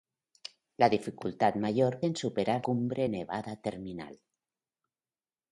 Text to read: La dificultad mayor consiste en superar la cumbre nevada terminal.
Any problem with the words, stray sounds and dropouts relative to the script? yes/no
yes